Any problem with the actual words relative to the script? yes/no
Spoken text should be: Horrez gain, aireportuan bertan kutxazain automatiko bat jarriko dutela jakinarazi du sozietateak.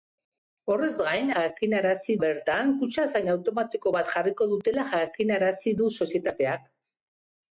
yes